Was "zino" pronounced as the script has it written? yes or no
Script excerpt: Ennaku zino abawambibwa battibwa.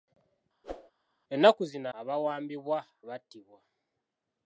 yes